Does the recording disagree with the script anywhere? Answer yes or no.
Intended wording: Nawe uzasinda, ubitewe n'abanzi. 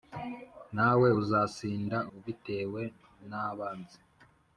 no